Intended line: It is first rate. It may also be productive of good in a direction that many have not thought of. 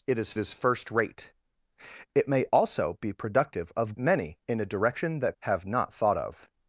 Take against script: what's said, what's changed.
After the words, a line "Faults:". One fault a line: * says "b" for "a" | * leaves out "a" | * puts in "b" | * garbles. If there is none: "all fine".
It is is first rate. It may also be productive of many in a direction that have not thought of.
Faults:
* puts in "is"
* says "many" for "good"
* leaves out "many"